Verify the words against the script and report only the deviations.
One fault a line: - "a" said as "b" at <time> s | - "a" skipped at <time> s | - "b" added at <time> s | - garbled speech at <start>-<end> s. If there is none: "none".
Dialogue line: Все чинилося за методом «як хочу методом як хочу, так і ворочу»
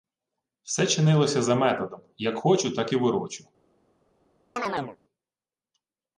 - "методом як хочу" skipped at 2.7 s